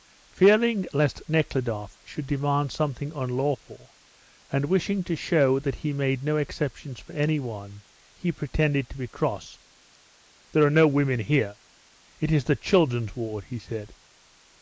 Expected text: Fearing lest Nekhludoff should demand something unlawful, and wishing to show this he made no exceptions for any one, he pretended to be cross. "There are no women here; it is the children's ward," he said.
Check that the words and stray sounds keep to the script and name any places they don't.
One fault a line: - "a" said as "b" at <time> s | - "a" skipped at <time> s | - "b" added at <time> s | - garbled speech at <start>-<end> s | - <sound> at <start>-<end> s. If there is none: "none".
- "this" said as "that" at 5.6 s